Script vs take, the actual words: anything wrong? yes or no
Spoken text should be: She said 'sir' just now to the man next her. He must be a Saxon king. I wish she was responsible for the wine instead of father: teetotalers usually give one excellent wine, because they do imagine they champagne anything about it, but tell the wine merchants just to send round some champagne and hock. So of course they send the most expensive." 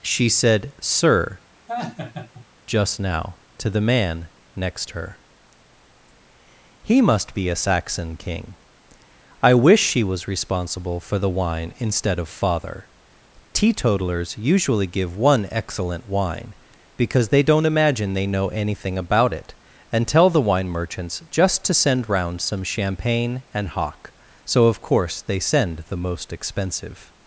yes